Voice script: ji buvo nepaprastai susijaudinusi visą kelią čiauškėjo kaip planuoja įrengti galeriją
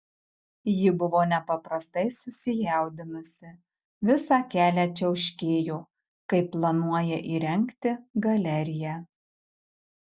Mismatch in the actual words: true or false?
false